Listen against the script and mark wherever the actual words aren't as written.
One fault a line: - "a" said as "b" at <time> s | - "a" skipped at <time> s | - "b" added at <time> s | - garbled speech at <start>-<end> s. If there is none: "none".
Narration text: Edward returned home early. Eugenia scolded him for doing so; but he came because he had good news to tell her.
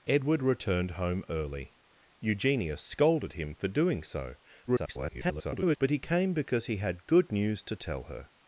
- garbled speech at 4.7-5.8 s